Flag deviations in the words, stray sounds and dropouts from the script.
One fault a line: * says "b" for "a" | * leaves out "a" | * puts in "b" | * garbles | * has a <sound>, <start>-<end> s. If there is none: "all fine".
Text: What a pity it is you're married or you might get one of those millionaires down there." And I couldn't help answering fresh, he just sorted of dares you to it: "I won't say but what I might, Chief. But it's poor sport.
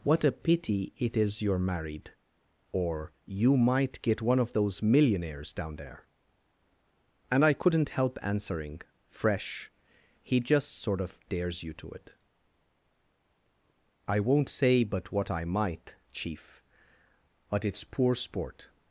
* says "sort" for "sorted"